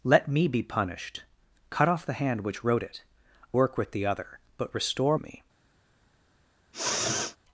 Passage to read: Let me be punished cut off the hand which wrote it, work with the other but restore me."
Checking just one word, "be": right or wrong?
right